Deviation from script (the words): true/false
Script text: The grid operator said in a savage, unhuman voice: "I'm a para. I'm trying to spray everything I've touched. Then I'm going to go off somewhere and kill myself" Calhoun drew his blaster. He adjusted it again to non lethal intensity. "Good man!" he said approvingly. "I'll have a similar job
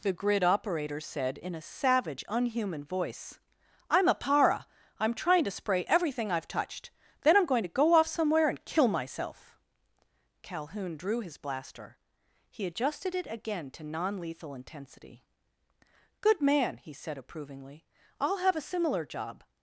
false